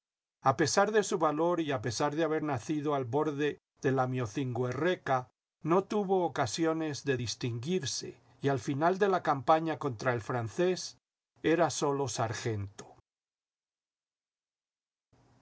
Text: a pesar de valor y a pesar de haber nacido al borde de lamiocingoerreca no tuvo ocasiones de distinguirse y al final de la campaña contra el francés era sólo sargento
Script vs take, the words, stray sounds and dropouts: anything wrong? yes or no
yes